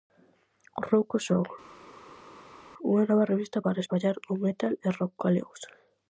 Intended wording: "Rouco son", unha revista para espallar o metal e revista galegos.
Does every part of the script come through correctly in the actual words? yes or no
no